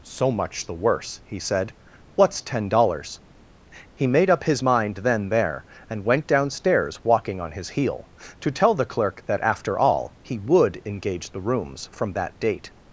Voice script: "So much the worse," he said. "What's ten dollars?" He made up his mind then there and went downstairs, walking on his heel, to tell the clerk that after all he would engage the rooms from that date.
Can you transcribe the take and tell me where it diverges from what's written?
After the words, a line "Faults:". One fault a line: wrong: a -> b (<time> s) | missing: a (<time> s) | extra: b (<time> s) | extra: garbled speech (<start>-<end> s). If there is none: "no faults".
"So much the worse," he said. "What's ten dollars?" He made up his mind then there and went downstairs, walking on his heel, to tell the clerk that after all he would engage the rooms from that date.
Faults:
no faults